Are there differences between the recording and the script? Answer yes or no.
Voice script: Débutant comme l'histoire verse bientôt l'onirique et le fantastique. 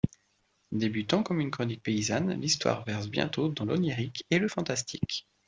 yes